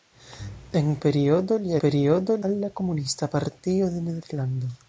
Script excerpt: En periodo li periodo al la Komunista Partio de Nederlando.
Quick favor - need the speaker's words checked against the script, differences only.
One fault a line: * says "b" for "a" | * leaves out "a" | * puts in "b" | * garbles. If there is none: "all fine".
all fine